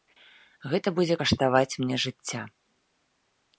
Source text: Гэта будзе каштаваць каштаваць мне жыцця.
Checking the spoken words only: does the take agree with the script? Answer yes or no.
no